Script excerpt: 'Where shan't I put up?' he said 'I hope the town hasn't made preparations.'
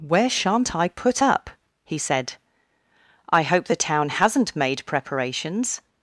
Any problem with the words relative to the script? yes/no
no